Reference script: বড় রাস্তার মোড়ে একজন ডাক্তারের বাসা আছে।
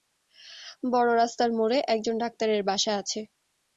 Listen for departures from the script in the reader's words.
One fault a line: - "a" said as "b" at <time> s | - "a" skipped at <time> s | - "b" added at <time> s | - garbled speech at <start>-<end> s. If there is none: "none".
none